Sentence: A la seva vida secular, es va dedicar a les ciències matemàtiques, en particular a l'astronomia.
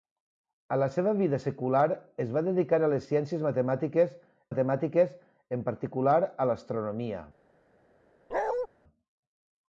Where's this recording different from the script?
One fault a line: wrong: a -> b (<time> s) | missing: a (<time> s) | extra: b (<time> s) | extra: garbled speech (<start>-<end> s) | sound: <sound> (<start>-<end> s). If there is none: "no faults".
extra: matemàtiques (4.5 s)
sound: bark (8.3-8.7 s)